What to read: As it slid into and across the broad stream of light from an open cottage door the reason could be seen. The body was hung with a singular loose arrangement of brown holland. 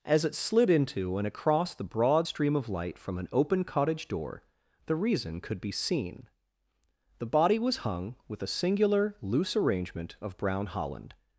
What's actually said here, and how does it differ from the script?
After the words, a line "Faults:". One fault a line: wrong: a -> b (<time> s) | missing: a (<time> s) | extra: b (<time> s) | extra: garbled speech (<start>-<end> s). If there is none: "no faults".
As it slid into and across the broad stream of light from an open cottage door the reason could be seen. The body was hung with a singular loose arrangement of brown holland.
Faults:
no faults